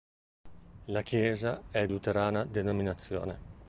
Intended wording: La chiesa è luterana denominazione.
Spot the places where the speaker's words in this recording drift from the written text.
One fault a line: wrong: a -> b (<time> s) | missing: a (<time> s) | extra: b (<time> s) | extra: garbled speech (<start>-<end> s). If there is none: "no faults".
no faults